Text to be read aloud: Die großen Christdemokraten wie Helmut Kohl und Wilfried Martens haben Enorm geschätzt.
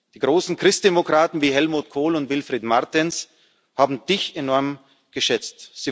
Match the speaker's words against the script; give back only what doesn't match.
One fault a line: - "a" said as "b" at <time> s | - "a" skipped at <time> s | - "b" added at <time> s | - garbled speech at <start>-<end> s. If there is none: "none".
- "Dich" added at 4.1 s